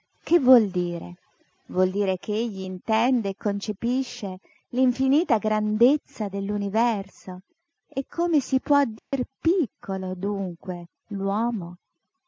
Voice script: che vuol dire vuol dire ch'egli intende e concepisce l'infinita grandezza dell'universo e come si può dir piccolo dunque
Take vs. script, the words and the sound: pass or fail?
fail